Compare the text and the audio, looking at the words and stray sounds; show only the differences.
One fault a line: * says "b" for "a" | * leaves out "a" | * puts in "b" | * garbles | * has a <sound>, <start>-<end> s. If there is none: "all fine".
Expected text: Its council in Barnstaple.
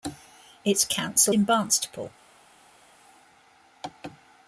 all fine